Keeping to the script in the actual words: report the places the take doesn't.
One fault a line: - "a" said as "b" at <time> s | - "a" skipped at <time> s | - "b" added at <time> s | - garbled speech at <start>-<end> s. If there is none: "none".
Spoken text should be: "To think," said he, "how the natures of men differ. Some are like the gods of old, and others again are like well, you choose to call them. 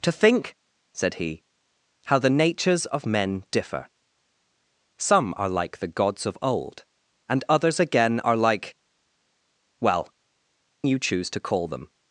none